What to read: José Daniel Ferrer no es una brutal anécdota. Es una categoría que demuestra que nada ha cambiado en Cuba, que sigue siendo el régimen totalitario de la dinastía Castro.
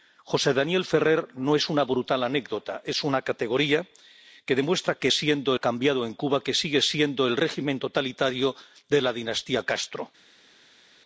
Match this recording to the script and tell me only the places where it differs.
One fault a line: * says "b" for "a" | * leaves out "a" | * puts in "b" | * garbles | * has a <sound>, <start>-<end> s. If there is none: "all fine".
* says "siendo" for "nada"